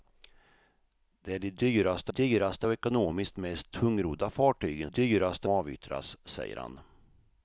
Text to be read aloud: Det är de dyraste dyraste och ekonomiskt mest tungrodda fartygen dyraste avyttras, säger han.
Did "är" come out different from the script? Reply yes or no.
no